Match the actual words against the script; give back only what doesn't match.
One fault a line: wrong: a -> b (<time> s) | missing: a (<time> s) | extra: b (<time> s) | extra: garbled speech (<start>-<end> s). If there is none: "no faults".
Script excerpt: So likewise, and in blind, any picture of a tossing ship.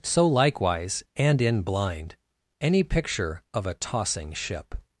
no faults